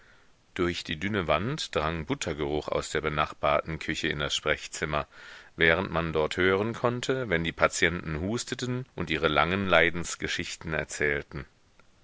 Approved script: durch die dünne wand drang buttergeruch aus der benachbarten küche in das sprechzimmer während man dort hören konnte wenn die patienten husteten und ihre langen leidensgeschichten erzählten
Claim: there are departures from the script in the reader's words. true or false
false